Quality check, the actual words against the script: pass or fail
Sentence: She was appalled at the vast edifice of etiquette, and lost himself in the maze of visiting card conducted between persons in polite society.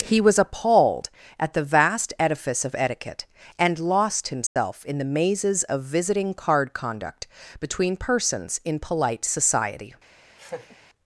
fail